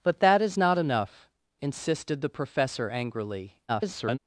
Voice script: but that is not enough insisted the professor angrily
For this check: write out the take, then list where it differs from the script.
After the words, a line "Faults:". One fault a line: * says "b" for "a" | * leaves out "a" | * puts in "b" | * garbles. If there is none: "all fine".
but that is not enough insisted the professor angrily [garbled]
Faults:
* garbles